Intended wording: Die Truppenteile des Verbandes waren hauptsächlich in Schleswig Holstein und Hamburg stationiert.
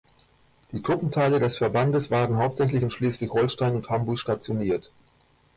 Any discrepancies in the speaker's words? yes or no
no